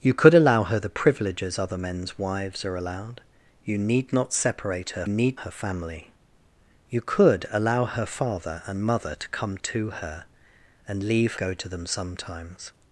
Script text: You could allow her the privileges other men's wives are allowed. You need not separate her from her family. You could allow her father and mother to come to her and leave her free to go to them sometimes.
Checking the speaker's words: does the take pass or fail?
fail